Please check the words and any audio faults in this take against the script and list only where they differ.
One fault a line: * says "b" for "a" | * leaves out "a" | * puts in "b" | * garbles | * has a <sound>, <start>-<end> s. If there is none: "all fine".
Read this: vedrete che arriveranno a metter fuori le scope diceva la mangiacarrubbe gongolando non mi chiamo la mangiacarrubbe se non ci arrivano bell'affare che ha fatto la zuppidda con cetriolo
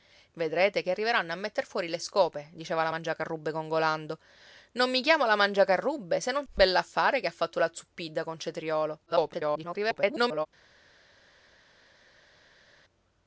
* leaves out "ci arrivano"
* garbles